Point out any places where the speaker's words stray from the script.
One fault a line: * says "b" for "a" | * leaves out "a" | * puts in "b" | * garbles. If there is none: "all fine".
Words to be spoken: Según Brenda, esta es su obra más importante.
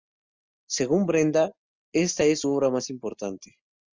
all fine